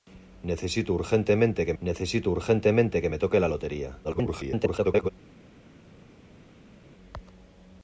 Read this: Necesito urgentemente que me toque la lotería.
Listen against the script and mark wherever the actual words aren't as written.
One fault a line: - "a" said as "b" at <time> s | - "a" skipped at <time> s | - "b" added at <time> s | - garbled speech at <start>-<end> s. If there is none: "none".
- "necesito urgentemente que" added at 1.8 s
- garbled speech at 4.0-5.1 s